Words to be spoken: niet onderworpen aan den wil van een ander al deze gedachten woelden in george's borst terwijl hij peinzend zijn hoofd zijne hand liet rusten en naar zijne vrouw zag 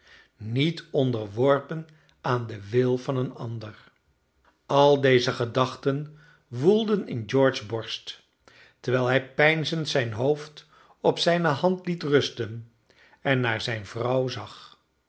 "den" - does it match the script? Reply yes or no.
yes